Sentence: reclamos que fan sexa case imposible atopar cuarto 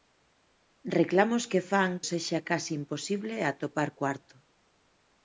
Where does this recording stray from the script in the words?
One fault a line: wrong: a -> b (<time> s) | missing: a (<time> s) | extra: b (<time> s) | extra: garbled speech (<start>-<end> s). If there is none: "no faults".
no faults